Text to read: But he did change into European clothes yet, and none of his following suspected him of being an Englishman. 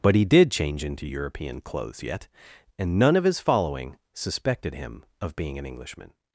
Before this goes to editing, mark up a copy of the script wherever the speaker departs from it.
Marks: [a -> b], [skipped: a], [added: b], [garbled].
But he did change into European clothes yet, and none of his following suspected him of being an Englishman.